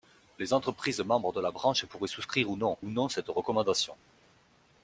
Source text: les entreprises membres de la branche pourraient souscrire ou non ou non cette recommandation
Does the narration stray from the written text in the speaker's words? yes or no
no